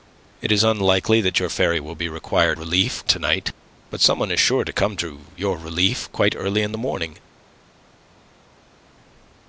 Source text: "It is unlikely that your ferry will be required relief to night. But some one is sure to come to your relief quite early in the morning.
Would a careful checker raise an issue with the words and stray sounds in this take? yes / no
no